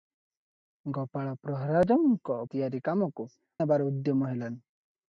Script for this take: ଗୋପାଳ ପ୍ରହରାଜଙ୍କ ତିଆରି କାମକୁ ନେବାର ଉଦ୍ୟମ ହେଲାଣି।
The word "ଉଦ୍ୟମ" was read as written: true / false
true